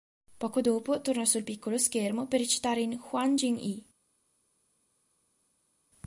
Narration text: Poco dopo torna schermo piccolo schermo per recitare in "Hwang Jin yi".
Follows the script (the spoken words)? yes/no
no